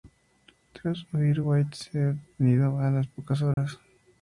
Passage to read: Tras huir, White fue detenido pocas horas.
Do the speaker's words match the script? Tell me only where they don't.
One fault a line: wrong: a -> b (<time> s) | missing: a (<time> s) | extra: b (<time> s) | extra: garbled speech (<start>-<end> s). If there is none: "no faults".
extra: a las (2.8 s)